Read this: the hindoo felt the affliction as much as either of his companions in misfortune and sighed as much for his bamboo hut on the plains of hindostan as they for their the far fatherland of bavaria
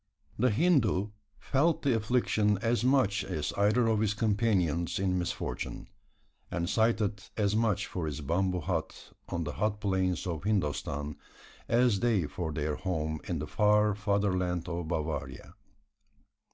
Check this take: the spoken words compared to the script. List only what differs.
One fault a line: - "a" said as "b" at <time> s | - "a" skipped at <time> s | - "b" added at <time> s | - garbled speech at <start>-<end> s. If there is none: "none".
- "hot" added at 9.6 s
- "home in" added at 12.8 s